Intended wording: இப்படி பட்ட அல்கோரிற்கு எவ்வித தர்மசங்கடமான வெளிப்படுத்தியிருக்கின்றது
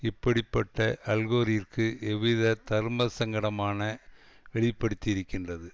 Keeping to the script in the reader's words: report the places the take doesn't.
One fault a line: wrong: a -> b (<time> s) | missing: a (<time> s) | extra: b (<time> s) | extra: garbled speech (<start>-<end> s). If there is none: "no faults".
no faults